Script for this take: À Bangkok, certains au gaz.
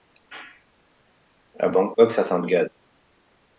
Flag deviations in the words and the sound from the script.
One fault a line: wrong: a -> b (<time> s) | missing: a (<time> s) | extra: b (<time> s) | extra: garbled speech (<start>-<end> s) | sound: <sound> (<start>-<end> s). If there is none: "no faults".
no faults